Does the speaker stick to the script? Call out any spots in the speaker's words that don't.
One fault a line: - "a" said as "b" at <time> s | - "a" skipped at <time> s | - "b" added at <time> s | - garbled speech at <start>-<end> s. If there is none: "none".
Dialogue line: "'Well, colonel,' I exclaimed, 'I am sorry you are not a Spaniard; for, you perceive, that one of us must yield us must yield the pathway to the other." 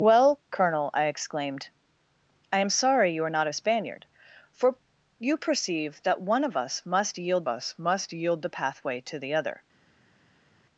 none